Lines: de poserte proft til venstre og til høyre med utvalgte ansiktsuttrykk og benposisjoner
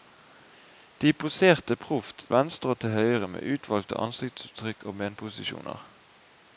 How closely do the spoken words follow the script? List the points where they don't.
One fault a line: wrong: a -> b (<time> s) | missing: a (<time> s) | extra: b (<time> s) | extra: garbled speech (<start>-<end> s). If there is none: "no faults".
missing: til (2.2 s)